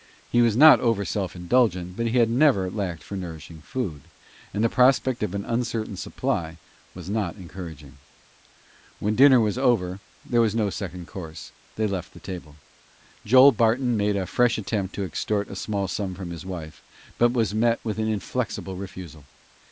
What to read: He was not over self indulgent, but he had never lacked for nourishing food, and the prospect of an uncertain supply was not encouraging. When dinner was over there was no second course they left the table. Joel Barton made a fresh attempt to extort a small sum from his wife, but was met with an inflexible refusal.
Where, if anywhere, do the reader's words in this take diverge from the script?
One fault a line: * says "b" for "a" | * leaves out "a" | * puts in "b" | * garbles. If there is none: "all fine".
all fine